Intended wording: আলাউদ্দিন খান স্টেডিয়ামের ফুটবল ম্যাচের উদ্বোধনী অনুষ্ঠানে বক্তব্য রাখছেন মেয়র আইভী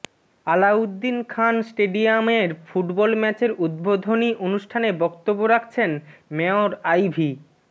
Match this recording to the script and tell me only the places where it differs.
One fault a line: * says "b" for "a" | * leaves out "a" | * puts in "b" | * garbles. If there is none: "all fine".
all fine